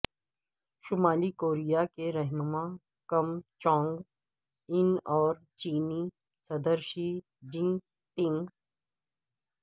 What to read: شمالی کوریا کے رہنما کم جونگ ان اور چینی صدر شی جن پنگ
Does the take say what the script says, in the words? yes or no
yes